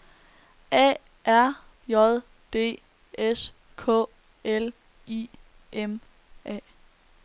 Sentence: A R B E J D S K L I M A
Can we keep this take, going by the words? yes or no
no